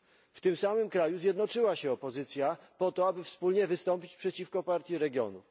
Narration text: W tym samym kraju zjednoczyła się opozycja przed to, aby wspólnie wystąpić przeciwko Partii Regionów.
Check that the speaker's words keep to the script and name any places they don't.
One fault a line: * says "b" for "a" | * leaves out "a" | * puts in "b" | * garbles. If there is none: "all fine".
* says "po" for "przed"